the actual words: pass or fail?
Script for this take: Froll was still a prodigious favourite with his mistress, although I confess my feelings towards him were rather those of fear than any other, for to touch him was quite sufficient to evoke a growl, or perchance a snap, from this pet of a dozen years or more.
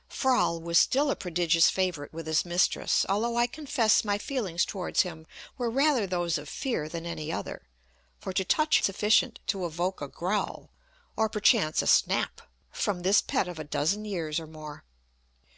fail